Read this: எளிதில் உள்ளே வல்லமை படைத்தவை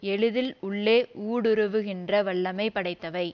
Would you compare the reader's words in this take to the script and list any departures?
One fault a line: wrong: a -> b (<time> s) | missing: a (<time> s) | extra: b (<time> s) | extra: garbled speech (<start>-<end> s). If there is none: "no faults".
extra: ஊடுருவுகின்ற (1.3 s)